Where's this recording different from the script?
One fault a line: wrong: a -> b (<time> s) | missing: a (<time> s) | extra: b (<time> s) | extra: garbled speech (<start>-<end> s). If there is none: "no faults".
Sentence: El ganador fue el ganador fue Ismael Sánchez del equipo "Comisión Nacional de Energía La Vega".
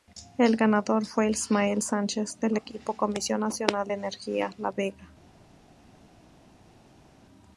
missing: el ganador fue (1.3 s)